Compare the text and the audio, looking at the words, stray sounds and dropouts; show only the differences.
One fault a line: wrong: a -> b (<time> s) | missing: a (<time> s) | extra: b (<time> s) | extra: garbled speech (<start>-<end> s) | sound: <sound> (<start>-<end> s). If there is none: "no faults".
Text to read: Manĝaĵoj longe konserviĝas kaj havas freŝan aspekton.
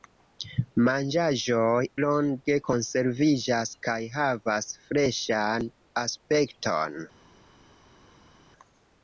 no faults